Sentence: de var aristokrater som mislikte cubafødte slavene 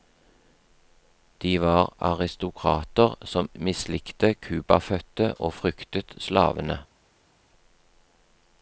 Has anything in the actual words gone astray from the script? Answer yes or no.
yes